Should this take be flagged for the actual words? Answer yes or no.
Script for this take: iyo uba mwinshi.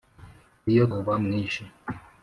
no